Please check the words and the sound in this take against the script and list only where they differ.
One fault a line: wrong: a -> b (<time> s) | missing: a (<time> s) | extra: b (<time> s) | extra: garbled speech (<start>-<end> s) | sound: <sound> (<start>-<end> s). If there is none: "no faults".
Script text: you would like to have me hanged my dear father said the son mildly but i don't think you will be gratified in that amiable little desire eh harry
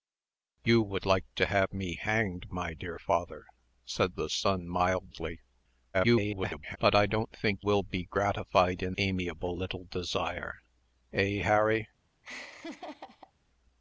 extra: garbled speech (5.9-6.8 s)
missing: you (7.6 s)
missing: that (9.0 s)
sound: laugh (12.2-13.3 s)